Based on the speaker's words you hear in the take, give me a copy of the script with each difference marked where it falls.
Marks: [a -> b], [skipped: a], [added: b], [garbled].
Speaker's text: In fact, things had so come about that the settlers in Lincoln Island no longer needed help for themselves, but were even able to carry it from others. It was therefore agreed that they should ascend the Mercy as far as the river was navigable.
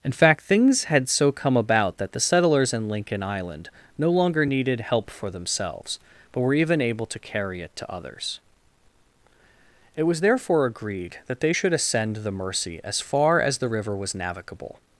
In fact, things had so come about that the settlers in Lincoln Island no longer needed help for themselves, but were even able to carry it [from -> to] others. It was therefore agreed that they should ascend the Mercy as far as the river was navigable.